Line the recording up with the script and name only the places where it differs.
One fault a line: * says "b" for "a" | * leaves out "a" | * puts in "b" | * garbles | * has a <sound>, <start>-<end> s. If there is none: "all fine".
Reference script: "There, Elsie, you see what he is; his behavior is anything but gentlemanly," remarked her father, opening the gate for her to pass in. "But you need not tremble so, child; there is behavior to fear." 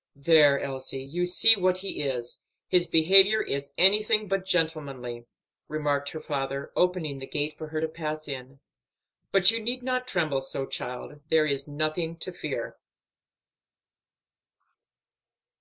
* says "nothing" for "behavior"